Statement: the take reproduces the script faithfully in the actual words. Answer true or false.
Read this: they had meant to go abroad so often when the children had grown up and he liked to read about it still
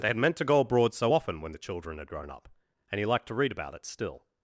true